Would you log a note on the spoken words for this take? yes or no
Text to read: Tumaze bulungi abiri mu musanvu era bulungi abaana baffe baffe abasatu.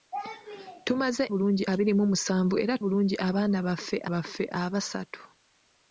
no